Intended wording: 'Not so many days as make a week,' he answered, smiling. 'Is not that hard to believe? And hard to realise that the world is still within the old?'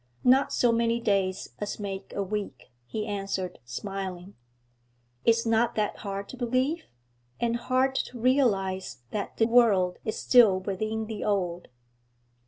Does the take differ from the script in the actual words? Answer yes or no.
no